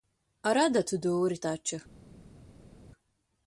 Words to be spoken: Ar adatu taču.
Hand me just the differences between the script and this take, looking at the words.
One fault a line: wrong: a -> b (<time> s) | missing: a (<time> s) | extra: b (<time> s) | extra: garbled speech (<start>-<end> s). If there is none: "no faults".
extra: dūri (1.1 s)